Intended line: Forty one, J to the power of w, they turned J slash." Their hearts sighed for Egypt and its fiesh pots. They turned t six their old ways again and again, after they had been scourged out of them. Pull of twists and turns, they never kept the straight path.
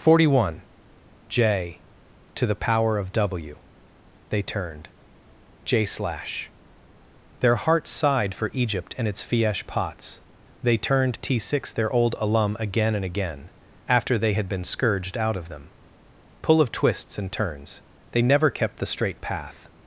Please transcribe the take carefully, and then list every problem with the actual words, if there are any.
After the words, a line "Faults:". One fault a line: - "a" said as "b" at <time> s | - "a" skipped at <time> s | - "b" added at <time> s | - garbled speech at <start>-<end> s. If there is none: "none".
Forty one, J to the power of w, they turned J slash." Their hearts sighed for Egypt and its fiesh pots. They turned t six their old alum again and again, after they had been scourged out of them. Pull of twists and turns, they never kept the straight path.
Faults:
- "ways" said as "alum" at 12.2 s